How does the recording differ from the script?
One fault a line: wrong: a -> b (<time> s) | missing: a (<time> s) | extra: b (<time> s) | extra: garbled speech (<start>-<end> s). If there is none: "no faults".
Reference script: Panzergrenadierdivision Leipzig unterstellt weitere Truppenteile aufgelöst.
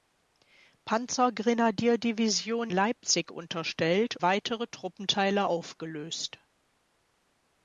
no faults